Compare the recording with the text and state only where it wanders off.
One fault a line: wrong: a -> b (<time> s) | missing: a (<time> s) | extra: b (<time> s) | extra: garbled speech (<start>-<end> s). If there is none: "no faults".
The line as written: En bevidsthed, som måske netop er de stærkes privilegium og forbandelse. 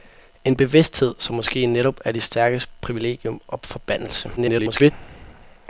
extra: garbled speech (4.4-4.9 s)